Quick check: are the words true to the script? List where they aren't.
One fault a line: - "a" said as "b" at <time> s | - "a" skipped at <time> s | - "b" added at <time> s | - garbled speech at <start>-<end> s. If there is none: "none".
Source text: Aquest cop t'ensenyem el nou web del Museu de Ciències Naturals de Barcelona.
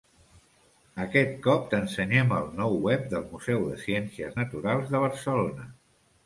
none